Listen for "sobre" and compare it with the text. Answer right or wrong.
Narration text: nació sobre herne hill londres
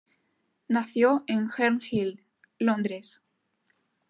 wrong